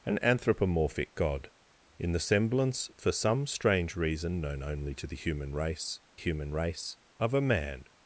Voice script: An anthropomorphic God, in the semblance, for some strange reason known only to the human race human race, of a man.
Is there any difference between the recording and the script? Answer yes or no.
no